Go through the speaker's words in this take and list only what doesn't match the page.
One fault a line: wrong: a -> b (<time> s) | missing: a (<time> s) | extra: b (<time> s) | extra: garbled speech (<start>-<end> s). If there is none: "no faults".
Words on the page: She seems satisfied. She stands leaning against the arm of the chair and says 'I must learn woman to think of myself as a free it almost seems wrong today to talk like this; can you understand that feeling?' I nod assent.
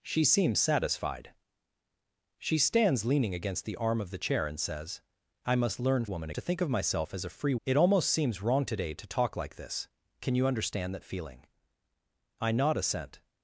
no faults